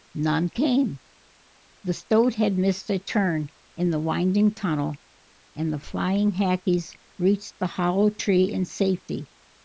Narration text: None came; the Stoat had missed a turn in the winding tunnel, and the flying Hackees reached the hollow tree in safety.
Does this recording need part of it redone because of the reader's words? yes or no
no